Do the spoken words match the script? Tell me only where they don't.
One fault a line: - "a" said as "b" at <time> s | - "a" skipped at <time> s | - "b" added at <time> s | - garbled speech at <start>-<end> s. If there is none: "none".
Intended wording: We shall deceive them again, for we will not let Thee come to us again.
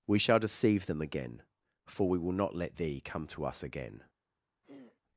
none